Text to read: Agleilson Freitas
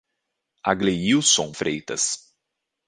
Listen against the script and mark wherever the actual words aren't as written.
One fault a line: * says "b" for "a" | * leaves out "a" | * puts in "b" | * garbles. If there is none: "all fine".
all fine